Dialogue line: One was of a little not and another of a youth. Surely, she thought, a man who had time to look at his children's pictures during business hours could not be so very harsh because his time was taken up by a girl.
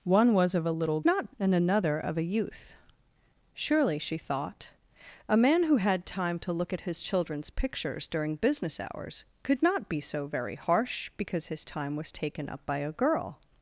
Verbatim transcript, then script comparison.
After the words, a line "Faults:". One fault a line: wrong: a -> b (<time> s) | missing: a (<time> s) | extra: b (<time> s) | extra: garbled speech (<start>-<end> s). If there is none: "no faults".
One was of a little not and another of a youth. Surely, she thought, a man who had time to look at his children's pictures during business hours could not be so very harsh because his time was taken up by a girl.
Faults:
no faults